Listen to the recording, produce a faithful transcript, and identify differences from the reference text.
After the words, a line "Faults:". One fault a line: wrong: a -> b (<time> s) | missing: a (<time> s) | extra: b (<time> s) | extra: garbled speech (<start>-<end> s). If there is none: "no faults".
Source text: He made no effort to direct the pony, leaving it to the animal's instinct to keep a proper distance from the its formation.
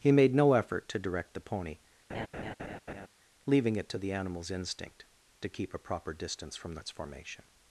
He made no effort to direct the pony, leaving it to the animal's instinct to keep a proper distance from the its formation.
Faults:
no faults